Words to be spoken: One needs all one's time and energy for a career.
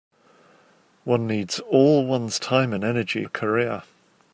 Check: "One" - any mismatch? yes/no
no